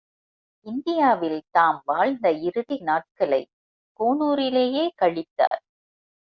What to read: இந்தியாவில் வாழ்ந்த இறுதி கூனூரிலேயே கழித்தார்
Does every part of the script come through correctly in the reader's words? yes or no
no